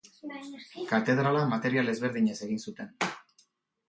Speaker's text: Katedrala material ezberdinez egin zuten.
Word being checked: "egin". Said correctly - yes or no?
yes